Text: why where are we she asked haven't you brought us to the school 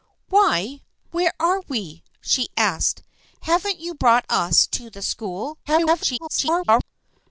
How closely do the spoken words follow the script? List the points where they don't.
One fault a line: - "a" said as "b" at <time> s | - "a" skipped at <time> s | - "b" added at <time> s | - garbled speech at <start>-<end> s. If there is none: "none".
- garbled speech at 5.7-6.8 s